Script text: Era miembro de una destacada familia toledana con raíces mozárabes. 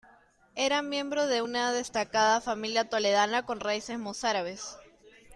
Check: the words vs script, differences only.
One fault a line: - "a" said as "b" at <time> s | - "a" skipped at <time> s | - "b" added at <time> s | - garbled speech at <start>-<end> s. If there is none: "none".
none